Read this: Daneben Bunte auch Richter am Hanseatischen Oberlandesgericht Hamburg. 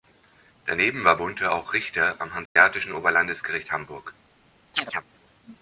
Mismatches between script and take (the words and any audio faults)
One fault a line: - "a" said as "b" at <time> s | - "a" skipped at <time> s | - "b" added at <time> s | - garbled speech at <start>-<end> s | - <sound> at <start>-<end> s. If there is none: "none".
- "war" added at 1.0 s
- dropout at 2.5-2.6 s
- chirp at 4.7-5.0 s